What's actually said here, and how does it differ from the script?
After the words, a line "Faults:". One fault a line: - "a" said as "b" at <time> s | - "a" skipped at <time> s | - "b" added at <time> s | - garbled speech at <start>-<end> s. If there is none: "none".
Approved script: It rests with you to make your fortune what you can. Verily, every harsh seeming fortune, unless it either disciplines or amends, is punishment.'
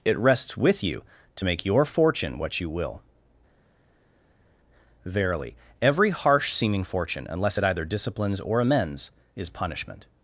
It rests with you to make your fortune what you will. Verily, every harsh seeming fortune, unless it either disciplines or amends, is punishment.'
Faults:
- "can" said as "will" at 2.7 s